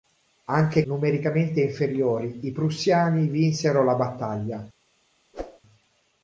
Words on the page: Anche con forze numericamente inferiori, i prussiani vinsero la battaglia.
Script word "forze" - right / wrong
wrong